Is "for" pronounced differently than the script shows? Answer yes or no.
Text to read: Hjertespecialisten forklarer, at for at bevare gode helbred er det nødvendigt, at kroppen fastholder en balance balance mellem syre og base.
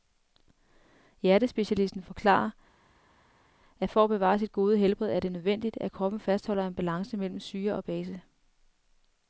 no